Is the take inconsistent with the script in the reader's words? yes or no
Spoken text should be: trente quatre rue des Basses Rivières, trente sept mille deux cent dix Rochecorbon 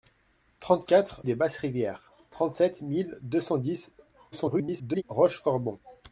yes